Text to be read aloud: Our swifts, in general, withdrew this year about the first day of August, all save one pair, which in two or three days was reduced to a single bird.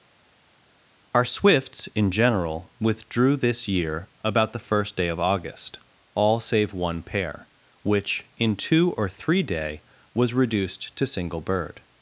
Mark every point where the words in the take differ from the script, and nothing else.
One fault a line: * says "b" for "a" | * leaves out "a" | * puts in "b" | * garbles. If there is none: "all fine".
* says "day" for "days"
* leaves out "a"